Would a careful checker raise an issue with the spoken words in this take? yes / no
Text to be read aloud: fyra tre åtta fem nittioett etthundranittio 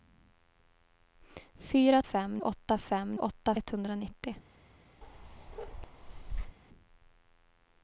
yes